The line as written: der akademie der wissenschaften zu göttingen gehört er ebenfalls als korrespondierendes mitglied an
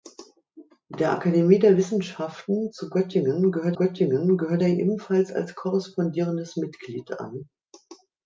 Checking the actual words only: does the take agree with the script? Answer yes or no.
no